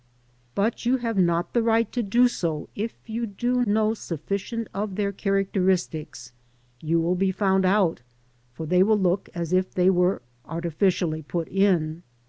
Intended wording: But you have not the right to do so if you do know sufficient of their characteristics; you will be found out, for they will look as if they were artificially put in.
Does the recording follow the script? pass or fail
pass